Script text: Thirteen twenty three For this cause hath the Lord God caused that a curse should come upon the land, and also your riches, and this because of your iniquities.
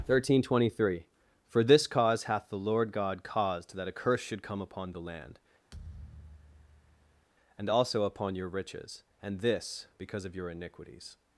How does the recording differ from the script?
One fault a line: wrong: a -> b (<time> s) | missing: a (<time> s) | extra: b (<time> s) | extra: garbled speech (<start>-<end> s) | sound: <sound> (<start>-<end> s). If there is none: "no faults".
sound: thud (5.7-7.3 s)
extra: upon (8.0 s)